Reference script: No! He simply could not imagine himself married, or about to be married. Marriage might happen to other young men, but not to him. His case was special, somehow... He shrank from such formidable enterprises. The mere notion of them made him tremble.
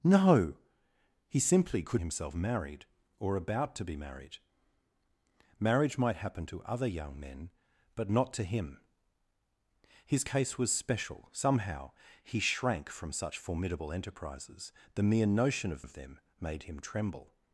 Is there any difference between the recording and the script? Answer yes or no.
yes